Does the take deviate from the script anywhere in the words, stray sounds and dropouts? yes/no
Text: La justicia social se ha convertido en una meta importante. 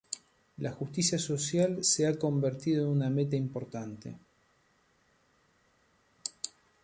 no